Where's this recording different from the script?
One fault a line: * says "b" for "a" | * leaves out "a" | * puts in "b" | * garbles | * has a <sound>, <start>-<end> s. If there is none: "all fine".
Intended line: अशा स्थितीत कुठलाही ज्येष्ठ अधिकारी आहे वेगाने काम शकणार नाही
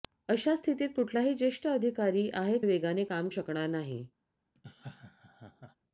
* has a laugh, 4.5-5.8 s